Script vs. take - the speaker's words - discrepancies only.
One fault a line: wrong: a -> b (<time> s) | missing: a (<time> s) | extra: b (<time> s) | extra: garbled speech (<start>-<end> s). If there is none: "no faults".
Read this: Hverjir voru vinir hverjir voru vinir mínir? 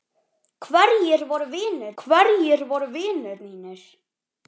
no faults